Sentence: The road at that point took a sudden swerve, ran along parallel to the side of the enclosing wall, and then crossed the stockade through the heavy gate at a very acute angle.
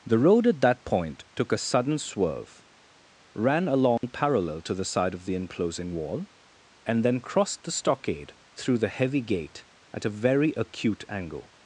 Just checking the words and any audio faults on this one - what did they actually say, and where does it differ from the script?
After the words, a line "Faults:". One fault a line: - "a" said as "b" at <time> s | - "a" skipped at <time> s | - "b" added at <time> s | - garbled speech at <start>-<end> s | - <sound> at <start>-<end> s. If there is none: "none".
The road at that point took a sudden swerve, ran along parallel to the side of the enclosing wall, and then crossed the stockade through the heavy gate at a very acute angle.
Faults:
- dropout at 4.0-4.0 s